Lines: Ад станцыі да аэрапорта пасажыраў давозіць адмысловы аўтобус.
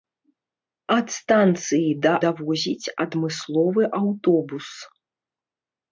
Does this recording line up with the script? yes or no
no